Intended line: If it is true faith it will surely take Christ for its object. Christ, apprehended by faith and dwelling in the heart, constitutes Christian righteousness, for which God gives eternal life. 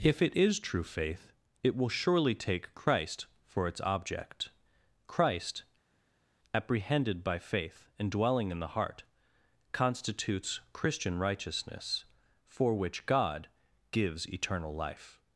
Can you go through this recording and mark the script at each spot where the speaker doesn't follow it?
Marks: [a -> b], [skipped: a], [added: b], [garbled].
If it is true faith it will surely take Christ for its object. Christ, apprehended by faith and dwelling in the heart, constitutes Christian righteousness, for which God gives eternal life.